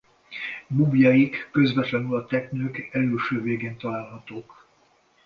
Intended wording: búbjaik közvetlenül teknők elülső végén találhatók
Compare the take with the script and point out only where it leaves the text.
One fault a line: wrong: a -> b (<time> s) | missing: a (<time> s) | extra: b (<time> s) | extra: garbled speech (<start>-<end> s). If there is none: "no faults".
extra: a (2.1 s)